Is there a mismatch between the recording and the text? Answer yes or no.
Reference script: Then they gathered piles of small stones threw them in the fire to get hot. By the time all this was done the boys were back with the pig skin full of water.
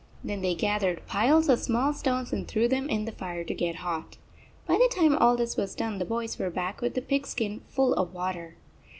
yes